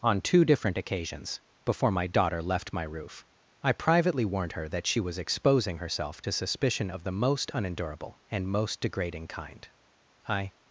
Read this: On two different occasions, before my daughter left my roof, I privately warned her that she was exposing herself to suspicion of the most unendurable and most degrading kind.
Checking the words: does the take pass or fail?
fail